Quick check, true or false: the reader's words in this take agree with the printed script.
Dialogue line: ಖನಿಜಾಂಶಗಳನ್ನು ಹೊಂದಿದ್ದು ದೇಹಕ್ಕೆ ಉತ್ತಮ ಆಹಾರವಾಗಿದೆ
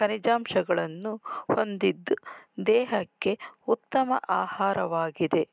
true